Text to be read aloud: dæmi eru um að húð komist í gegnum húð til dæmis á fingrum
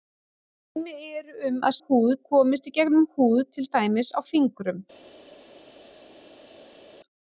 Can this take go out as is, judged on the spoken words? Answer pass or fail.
pass